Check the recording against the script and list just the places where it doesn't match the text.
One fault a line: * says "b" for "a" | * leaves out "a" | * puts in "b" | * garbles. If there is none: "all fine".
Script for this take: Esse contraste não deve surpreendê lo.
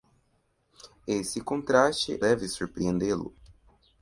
* leaves out "não"